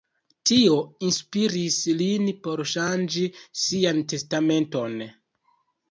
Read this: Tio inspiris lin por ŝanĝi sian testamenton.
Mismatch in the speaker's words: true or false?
false